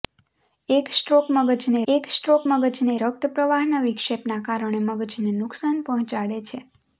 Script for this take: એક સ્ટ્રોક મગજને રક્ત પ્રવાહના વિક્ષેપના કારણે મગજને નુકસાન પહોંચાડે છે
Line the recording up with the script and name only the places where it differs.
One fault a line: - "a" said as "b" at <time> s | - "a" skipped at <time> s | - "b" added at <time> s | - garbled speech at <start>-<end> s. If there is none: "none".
- "એક સ્ટ્રોક મગજને" added at 1.9 s